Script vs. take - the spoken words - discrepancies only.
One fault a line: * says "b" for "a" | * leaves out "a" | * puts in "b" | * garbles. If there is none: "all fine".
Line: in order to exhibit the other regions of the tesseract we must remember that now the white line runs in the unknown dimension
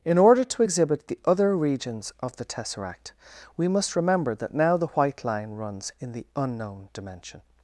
all fine